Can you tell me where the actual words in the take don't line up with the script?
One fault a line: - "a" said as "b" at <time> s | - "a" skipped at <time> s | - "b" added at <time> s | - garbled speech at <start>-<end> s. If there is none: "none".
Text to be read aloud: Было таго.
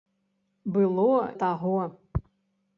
none